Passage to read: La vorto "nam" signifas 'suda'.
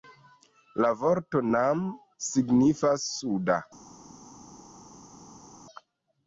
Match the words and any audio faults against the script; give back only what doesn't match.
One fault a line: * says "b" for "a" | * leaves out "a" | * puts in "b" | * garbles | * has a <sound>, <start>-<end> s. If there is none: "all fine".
all fine